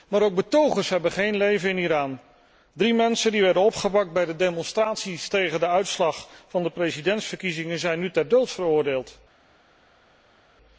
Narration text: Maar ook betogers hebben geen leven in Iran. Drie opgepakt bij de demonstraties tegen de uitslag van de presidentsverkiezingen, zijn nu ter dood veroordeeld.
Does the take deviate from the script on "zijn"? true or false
false